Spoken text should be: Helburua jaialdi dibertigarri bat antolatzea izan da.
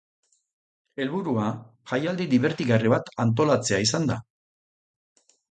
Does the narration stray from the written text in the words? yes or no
no